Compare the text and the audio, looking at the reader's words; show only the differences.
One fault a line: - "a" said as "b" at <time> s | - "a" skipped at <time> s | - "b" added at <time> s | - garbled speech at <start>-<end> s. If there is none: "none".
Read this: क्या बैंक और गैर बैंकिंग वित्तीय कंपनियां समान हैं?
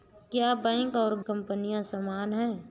- "गैर बैंकिंग वित्तीय" skipped at 1.2 s